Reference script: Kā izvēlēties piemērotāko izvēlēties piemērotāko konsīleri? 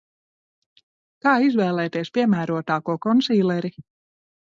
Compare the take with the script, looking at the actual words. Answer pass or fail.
fail